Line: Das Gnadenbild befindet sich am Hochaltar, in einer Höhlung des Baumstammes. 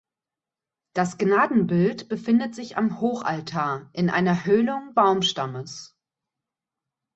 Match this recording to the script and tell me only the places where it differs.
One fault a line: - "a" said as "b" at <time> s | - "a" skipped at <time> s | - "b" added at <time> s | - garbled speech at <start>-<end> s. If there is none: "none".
- "des" skipped at 4.9 s